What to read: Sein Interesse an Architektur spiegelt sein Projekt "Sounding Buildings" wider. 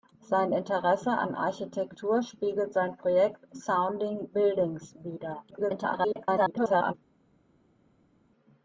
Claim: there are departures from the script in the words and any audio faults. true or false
true